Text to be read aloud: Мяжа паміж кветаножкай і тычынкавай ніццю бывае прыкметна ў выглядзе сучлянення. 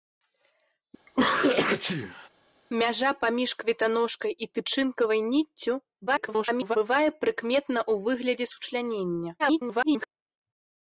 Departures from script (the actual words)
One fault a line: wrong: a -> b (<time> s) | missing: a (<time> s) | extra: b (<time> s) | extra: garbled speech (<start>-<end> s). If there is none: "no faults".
extra: garbled speech (6.1-6.8 s)
extra: garbled speech (9.4-10.1 s)